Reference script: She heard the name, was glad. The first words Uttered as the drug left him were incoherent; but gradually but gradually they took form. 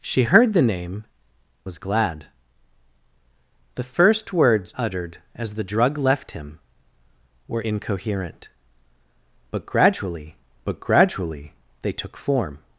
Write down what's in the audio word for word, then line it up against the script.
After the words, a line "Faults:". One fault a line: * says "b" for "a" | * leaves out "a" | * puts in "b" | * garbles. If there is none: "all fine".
She heard the name, was glad. The first words Uttered as the drug left him were incoherent; but gradually but gradually they took form.
Faults:
all fine